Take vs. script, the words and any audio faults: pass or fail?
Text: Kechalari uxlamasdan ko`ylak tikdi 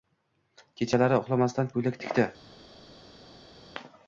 pass